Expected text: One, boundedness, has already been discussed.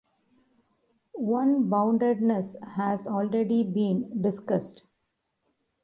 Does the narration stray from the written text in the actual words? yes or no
no